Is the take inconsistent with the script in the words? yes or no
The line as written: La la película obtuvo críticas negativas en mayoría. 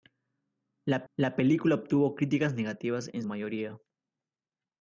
no